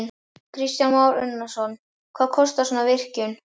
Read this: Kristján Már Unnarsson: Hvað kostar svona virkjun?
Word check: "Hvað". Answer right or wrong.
right